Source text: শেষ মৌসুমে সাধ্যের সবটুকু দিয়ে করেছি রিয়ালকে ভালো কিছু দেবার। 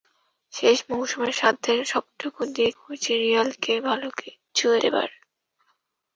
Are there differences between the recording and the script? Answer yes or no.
no